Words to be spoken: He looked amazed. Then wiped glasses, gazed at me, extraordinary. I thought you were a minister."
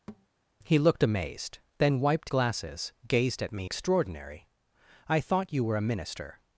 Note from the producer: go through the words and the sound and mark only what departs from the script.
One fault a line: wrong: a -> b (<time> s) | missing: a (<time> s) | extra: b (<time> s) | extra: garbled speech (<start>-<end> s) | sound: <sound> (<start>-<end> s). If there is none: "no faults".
sound: thud (0.1-0.3 s)